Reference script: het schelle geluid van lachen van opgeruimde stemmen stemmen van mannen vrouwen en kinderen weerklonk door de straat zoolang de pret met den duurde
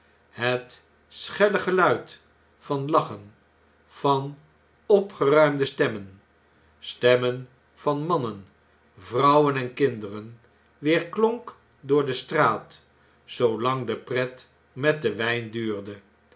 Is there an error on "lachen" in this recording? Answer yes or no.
no